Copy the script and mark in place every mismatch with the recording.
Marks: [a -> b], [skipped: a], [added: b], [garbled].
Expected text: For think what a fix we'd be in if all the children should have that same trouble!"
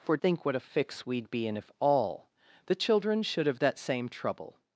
For think what a fix we'd be in if all the children should have that same trouble!"